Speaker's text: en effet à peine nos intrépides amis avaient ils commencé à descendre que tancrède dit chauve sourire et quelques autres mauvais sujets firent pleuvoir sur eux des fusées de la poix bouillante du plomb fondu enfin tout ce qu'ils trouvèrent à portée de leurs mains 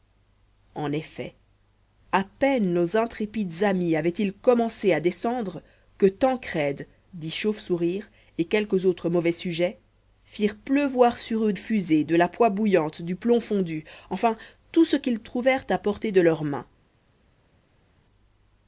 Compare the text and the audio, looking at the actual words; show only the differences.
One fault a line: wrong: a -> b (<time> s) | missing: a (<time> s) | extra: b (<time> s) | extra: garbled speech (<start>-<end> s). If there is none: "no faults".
missing: des (11.5 s)